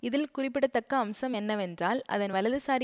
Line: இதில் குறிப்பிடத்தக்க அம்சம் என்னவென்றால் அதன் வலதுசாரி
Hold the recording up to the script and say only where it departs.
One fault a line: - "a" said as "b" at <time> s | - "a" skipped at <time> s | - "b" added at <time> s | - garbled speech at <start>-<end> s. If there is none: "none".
none